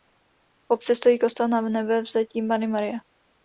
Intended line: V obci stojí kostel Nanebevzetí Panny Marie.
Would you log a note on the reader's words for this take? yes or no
no